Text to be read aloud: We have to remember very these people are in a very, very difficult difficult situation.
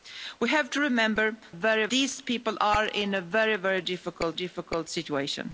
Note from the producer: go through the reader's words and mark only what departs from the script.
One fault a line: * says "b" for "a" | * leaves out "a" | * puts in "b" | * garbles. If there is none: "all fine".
all fine